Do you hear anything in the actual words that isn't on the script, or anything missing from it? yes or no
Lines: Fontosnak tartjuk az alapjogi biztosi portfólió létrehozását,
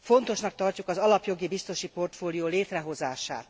no